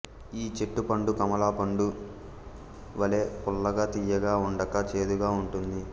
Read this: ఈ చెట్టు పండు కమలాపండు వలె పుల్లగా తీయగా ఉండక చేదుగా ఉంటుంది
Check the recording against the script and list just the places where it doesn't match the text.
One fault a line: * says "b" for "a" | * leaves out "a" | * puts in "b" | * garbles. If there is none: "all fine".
all fine